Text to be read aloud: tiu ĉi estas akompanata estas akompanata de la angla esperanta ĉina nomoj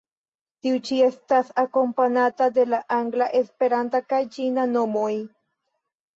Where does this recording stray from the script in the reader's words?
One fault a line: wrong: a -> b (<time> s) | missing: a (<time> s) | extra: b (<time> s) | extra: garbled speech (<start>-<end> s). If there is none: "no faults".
missing: estas akompanata (2.5 s)
extra: kaj (4.1 s)